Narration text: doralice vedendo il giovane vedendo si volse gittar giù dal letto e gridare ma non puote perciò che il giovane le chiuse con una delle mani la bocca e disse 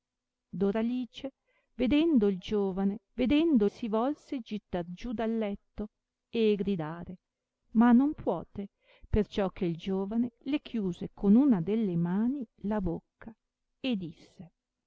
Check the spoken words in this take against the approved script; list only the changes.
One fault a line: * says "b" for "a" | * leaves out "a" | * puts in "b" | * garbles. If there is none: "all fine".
all fine